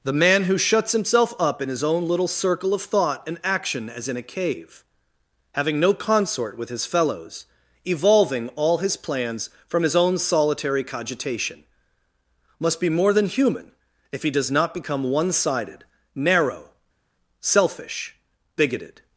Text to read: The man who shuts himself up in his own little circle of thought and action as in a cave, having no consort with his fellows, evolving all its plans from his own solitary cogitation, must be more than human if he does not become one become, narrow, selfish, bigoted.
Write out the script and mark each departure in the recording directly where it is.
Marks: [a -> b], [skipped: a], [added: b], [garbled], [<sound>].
The man who shuts himself up in his own little circle of thought and action as in a cave, having no consort with his fellows, evolving all [its -> his] plans from his own solitary cogitation, must be more than human if he does not become one [become, -> sided] narrow, selfish, bigoted.